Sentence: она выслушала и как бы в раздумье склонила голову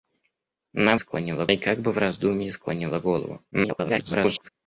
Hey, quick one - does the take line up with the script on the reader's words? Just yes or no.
no